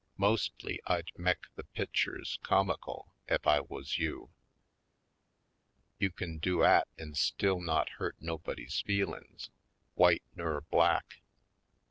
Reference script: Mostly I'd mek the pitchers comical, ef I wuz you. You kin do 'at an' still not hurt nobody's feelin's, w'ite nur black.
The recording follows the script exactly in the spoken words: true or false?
true